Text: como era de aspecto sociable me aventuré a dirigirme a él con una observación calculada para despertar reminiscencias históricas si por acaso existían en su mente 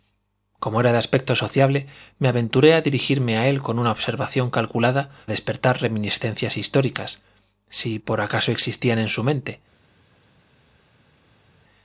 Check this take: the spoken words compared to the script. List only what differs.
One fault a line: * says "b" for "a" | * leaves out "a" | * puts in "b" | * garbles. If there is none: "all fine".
* leaves out "para"